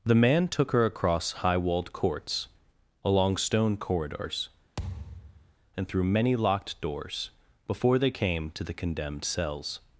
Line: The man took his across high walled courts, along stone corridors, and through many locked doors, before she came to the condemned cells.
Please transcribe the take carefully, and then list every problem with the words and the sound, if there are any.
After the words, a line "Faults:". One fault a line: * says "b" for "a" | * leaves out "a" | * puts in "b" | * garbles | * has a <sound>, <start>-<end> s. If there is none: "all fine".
The man took her across high walled courts, along stone corridors, and through many locked doors, before they came to the condemned cells.
Faults:
* says "her" for "his"
* has a thud, 4.8-5.5 s
* says "they" for "she"